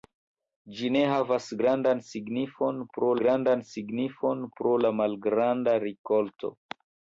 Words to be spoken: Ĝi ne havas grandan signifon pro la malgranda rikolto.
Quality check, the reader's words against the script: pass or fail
fail